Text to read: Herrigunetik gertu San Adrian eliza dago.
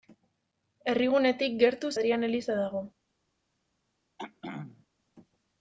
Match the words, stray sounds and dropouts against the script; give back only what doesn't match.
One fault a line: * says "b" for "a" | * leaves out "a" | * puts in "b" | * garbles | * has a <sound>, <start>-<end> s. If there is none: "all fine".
* leaves out "San"
* has a throat clearing, 4.2-4.9 s